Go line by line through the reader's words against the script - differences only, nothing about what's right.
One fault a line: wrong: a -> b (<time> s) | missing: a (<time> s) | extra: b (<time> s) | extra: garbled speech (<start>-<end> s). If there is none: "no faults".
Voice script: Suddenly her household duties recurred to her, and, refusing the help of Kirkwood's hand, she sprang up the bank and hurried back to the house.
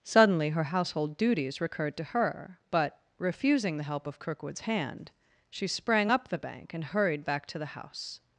wrong: and -> but (2.7 s)